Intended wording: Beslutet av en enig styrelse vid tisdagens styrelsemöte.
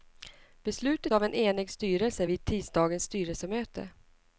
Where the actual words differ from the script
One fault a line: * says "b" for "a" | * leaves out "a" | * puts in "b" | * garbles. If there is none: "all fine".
all fine